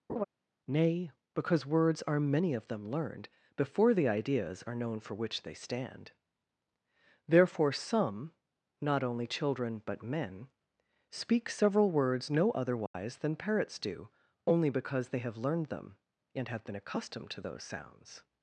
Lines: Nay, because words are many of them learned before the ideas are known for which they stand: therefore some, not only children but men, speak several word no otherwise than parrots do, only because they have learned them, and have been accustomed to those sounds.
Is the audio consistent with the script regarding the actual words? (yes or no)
no